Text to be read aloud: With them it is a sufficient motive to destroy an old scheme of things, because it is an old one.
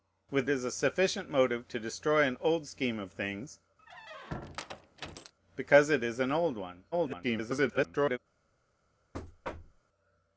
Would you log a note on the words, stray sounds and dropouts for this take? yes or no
yes